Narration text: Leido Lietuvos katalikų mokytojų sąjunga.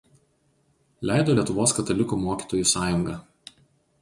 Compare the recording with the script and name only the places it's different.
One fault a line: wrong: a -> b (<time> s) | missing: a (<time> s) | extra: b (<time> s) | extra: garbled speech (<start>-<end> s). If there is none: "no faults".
no faults